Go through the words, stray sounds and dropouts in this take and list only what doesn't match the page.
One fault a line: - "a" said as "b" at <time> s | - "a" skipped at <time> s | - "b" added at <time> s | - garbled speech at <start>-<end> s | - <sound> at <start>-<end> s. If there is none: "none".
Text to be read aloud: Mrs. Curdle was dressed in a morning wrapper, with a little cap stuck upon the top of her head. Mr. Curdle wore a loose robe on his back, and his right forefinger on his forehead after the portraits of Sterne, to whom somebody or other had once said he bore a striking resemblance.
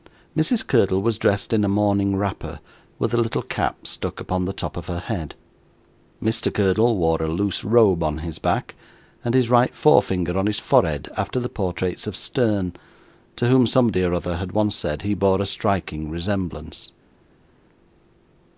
none